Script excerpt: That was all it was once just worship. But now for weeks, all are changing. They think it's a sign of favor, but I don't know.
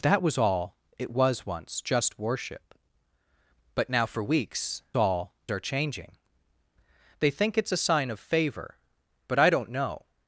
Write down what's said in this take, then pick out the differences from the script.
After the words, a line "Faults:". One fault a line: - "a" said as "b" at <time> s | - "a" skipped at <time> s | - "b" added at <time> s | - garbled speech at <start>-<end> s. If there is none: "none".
That was all it was once just worship. But now for weeks, all are changing. They think it's a sign of favor, but I don't know.
Faults:
none